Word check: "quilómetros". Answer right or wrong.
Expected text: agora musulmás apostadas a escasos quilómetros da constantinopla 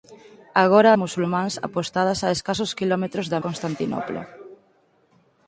right